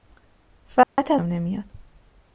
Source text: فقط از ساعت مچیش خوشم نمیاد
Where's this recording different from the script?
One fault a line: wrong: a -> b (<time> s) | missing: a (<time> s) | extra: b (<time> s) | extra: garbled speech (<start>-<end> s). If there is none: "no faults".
missing: ساعت مچیش خوشم (1.2 s)